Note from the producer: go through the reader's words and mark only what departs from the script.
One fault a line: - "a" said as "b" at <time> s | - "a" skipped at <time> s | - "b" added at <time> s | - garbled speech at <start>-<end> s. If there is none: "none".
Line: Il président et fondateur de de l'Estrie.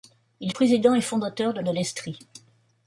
none